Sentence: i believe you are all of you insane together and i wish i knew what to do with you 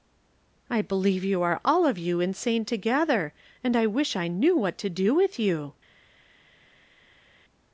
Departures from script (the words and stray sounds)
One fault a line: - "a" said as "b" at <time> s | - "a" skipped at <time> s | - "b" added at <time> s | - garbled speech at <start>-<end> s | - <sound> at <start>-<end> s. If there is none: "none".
none